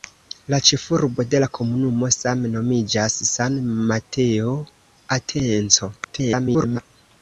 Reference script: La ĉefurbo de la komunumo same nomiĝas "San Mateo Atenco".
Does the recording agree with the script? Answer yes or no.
no